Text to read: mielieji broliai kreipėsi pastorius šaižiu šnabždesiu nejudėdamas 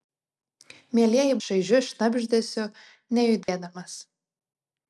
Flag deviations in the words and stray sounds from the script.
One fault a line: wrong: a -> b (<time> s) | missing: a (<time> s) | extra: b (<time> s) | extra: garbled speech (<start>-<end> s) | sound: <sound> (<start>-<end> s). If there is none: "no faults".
missing: broliai kreipėsi pastorius (1.4 s)
sound: dropout (3.4-3.5 s)